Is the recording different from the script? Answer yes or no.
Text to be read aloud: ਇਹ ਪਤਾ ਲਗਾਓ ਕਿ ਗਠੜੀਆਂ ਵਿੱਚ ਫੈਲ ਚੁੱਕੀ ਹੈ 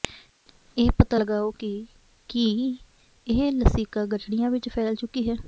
yes